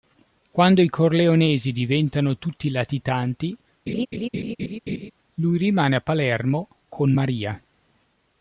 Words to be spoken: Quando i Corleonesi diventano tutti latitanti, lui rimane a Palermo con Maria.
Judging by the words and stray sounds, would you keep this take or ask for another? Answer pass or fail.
fail